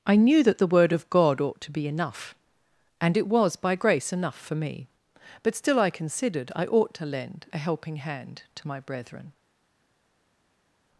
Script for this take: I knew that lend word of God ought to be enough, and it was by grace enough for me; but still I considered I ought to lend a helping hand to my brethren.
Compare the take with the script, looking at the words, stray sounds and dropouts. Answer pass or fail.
fail